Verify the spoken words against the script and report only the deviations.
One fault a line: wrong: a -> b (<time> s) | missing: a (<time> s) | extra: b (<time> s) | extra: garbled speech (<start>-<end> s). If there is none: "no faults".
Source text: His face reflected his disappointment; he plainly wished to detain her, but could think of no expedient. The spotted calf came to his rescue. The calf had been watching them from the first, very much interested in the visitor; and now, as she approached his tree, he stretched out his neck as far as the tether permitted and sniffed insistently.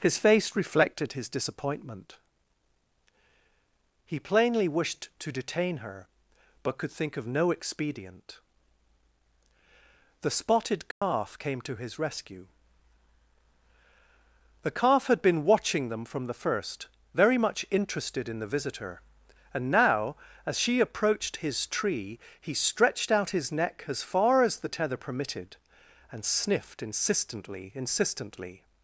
extra: insistently (27.8 s)